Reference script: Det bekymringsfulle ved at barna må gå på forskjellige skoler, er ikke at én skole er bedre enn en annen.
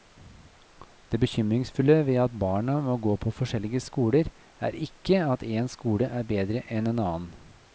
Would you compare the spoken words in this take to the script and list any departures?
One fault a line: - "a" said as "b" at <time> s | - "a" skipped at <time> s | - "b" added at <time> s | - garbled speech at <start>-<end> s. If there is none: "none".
none